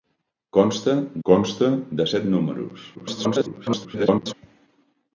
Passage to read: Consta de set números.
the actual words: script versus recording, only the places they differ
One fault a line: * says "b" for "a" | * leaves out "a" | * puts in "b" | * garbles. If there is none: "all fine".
* puts in "consta"
* garbles